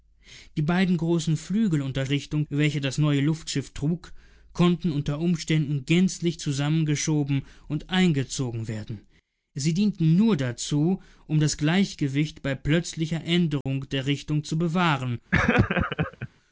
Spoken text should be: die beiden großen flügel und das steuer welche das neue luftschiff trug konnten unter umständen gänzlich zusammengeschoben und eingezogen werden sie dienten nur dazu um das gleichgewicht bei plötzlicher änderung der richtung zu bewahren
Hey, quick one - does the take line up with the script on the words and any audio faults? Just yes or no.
no